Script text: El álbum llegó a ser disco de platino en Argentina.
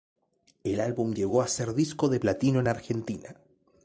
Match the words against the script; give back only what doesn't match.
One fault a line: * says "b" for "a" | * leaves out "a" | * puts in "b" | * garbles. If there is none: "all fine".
all fine